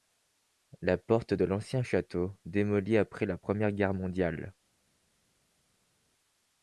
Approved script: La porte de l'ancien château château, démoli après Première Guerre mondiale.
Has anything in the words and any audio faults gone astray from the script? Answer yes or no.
yes